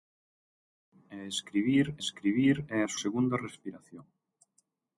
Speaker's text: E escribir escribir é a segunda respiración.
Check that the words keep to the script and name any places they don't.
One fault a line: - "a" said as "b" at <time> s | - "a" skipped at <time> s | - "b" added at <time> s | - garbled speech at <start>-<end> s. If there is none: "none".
none